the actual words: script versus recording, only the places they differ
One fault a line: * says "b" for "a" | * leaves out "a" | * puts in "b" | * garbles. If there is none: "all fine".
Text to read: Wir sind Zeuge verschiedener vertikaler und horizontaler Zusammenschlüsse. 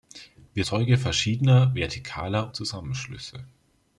* leaves out "sind"
* leaves out "und horizontaler"